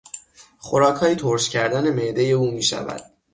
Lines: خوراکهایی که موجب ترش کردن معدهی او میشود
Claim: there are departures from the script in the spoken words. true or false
true